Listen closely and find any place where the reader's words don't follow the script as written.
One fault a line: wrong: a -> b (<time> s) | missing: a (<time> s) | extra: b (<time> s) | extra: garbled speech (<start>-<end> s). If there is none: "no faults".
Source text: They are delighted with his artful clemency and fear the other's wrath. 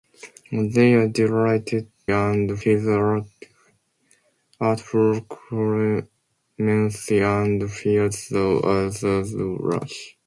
wrong: with -> and (2.1 s)